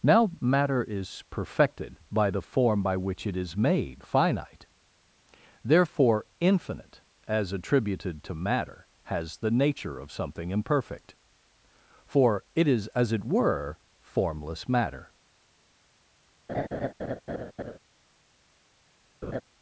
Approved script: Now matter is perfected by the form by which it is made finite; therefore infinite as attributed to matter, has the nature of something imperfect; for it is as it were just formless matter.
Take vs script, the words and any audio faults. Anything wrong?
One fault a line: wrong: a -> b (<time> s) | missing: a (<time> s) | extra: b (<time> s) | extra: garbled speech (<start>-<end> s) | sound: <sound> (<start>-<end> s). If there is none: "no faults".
missing: just (13.8 s)
sound: laugh (16.5-17.8 s)
sound: laugh (19.2-19.4 s)